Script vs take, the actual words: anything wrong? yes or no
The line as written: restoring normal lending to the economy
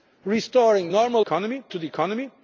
yes